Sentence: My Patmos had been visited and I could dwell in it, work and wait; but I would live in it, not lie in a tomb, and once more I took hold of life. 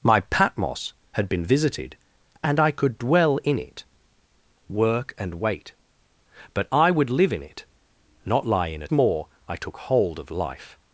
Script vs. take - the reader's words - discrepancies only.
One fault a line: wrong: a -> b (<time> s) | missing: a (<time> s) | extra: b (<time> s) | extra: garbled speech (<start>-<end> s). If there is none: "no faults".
missing: tomb and once (8.9 s)